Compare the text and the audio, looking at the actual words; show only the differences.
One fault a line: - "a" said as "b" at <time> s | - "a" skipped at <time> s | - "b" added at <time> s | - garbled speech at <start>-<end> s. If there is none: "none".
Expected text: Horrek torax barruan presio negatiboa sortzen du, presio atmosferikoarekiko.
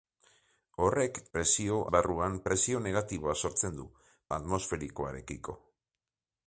- "torax" said as "presio" at 1.4 s
- "presio" skipped at 3.9 s